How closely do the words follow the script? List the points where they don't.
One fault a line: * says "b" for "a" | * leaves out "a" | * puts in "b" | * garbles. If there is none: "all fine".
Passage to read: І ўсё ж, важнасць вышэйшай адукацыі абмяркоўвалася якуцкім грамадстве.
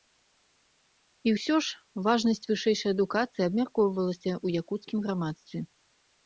* puts in "ў"